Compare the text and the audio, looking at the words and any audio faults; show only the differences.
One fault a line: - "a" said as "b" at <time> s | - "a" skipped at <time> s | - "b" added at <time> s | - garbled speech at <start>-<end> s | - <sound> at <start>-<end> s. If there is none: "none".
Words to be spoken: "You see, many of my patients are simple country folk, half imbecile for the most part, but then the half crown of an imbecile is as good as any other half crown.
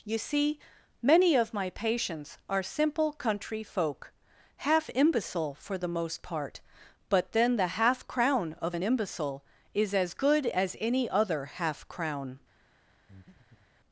- breath at 13.1-13.7 s